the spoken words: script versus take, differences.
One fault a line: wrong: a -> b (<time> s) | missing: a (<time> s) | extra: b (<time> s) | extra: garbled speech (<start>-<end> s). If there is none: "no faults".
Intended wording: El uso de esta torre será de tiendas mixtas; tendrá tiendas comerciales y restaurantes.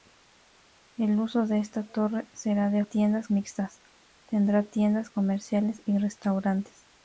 no faults